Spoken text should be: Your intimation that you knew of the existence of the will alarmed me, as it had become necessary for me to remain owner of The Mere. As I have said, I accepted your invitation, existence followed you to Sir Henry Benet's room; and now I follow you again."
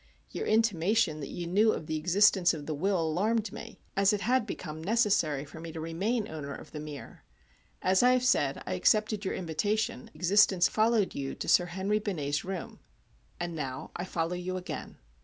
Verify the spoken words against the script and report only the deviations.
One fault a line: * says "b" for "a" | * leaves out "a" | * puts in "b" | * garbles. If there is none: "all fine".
all fine